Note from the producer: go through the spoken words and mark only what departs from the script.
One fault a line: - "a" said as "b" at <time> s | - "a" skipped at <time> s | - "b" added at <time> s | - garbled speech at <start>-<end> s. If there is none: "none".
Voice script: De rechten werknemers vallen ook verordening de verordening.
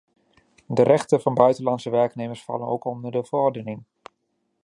- "van buitenlandse" added at 1.2 s
- "verordening" said as "onder" at 2.9 s